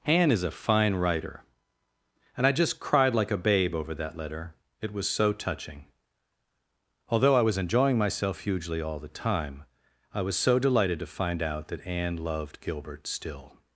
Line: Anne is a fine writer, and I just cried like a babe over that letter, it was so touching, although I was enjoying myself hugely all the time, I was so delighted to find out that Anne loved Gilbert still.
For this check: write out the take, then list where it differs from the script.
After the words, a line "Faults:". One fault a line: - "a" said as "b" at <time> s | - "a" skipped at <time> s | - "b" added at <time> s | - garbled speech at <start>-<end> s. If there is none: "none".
Anne is a fine writer, and I just cried like a babe over that letter, it was so touching, although I was enjoying myself hugely all the time, I was so delighted to find out that Anne loved Gilbert still.
Faults:
none